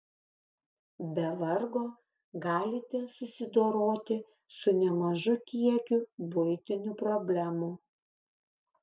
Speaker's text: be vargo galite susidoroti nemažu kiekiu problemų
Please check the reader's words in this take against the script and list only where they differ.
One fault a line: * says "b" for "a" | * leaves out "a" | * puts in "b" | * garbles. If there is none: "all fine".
* puts in "su"
* puts in "buitinių"